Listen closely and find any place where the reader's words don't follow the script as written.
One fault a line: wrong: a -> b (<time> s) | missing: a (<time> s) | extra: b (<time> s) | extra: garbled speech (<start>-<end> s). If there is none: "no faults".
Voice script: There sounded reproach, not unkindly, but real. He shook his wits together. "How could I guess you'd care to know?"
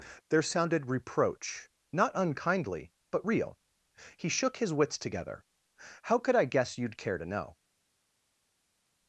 no faults